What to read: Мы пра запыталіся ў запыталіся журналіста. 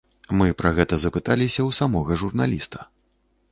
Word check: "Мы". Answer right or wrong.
right